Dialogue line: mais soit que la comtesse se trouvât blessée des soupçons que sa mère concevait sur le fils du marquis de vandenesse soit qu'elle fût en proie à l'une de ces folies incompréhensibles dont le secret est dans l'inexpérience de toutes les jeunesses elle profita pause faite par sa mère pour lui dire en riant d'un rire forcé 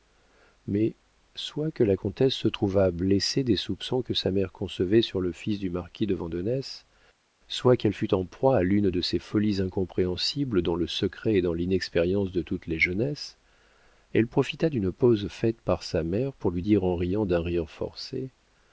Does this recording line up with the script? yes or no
no